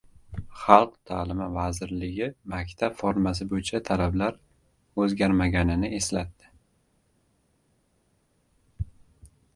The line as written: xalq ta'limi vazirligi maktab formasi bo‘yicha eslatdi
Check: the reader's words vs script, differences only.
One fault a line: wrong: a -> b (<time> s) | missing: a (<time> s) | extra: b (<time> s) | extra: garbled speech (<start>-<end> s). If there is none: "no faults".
extra: talablar o‘zgarmaganini (3.9 s)